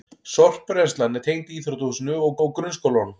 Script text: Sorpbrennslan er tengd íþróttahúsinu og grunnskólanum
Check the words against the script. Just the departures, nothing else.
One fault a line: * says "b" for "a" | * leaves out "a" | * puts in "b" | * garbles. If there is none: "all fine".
* puts in "og"